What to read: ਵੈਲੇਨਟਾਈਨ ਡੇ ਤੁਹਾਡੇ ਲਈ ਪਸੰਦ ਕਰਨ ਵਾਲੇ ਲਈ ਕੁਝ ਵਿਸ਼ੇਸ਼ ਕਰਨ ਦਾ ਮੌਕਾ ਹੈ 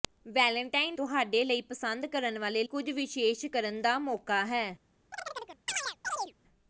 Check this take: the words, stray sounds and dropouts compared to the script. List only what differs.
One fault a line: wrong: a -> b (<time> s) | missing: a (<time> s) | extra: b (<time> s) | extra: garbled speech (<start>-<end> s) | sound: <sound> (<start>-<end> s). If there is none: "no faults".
missing: ਡੇ (0.9 s)
missing: ਲਈ (2.6 s)
sound: chirp (5.1-6.3 s)